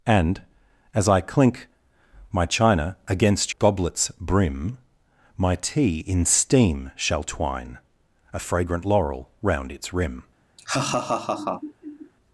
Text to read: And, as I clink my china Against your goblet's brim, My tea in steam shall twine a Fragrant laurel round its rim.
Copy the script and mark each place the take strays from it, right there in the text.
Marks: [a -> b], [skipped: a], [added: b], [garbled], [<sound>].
And, as I clink my china Against [skipped: your] goblet's brim, My tea in steam shall twine a Fragrant laurel round its rim. [laugh]